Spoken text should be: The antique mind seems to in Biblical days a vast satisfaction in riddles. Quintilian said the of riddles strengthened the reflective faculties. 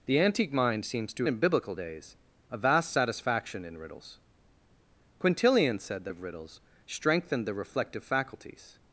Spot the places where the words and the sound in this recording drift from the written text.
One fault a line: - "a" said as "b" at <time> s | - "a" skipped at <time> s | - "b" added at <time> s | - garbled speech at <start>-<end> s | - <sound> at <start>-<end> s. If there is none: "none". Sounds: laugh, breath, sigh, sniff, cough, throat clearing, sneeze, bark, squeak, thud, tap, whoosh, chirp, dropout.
none